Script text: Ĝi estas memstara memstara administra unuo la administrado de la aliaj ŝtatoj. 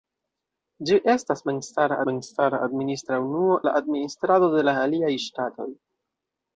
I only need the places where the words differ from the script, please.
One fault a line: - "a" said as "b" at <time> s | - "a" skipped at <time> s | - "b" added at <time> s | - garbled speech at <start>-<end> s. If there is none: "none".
none